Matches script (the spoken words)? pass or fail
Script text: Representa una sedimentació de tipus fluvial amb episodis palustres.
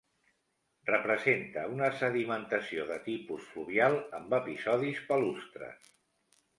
pass